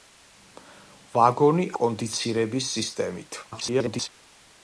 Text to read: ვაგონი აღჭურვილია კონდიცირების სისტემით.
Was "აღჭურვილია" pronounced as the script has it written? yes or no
no